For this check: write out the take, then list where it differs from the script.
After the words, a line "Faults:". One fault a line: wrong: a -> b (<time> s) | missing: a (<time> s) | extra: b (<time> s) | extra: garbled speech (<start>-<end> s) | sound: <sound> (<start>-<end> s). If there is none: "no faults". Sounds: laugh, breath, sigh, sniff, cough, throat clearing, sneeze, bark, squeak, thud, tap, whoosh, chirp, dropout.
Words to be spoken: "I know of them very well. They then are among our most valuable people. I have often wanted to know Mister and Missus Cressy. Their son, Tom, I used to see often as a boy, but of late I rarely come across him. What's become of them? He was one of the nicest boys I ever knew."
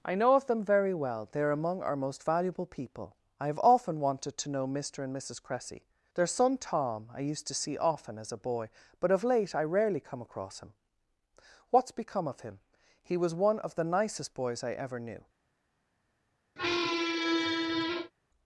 "I know of them very well. They are among our most valuable people. I have often wanted to know Mister and Missus Cressy. Their son, Tom, I used to see often as a boy, but of late I rarely come across him. What's become of him? He was one of the nicest boys I ever knew."
Faults:
missing: then (1.4 s)
wrong: them -> him (12.4 s)
sound: squeak (16.6-18.1 s)